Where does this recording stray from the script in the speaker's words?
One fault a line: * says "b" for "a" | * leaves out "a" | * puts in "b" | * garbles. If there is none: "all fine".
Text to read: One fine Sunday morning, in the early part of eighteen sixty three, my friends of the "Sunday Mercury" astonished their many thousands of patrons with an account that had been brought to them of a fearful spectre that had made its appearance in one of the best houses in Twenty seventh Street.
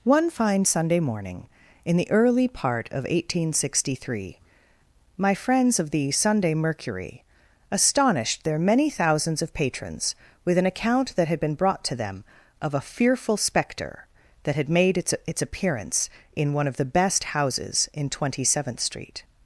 * puts in "its"